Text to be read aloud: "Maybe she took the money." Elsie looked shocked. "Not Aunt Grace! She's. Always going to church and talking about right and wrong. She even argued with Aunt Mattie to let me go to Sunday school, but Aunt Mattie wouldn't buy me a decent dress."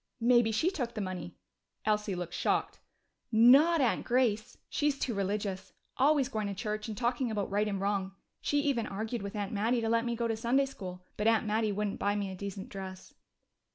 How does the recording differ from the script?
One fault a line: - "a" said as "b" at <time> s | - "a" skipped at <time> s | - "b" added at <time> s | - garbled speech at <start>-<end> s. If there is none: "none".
- "too religious" added at 5.0 s